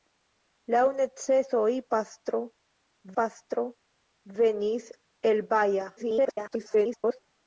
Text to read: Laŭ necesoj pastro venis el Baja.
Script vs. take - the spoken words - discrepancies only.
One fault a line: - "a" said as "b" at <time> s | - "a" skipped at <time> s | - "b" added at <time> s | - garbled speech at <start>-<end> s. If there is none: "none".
- "pastro" added at 3.2 s
- garbled speech at 6.0-7.2 s